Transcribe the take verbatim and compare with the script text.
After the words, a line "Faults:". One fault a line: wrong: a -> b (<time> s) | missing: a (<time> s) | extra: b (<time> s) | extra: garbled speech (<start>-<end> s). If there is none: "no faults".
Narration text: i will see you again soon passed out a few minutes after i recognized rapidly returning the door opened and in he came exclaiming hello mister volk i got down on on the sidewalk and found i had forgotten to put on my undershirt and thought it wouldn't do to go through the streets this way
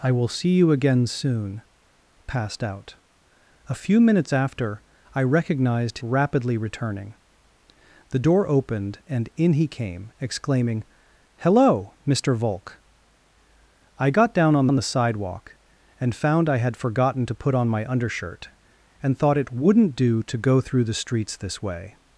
i will see you again soon passed out a few minutes after i recognized rapidly returning the door opened and in he came exclaiming hello mister volk i got down on on the sidewalk and found i had forgotten to put on my undershirt and thought it wouldn't do to go through the streets this way
Faults:
no faults